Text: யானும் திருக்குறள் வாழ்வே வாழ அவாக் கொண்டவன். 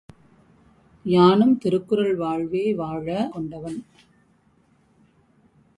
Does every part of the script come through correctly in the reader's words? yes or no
no